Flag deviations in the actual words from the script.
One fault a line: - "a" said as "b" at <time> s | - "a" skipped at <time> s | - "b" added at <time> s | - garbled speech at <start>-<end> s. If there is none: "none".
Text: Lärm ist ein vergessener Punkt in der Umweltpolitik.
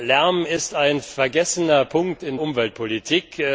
- "der" skipped at 2.4 s